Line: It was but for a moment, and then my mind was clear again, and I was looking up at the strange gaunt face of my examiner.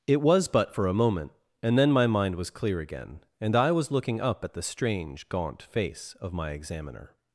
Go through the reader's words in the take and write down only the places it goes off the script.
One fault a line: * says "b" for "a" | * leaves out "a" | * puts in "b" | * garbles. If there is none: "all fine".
all fine